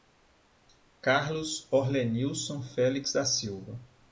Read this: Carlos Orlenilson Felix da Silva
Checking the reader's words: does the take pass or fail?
pass